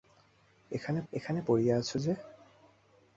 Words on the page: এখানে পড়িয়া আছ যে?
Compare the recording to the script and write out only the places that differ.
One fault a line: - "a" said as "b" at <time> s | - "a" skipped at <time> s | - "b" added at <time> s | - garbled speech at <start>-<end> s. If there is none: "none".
- "এখানে" added at 1.1 s